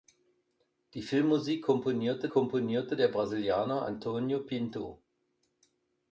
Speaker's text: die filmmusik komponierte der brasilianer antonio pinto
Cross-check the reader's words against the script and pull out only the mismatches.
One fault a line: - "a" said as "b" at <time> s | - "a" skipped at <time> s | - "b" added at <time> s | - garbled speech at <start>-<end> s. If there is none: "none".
- "komponierte" added at 2.3 s